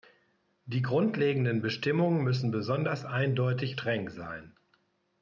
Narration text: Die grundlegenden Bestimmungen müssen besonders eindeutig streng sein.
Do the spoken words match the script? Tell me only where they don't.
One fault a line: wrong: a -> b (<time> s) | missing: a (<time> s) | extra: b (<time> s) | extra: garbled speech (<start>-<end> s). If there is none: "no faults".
no faults